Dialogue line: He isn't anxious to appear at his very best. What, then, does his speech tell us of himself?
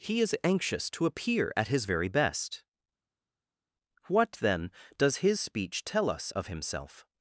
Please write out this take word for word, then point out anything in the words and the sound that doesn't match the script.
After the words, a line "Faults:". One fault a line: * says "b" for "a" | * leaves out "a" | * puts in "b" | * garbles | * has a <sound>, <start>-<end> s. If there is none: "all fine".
He is anxious to appear at his very best. What, then, does his speech tell us of himself?
Faults:
* says "is" for "isn't"